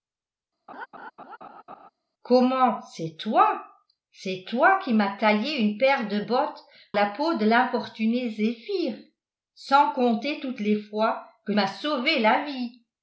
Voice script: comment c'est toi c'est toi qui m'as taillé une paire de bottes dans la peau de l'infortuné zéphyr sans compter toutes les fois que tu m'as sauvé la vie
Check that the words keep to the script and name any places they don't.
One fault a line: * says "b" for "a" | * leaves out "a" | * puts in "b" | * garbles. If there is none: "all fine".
* leaves out "dans"
* leaves out "tu"